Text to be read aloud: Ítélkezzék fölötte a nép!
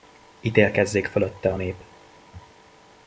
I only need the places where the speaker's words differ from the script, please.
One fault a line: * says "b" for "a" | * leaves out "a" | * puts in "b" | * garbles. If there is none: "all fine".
all fine